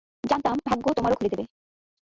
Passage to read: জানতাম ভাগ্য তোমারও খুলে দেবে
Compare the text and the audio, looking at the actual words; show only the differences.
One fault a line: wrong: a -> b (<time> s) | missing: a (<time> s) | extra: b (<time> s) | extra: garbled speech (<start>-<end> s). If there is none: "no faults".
no faults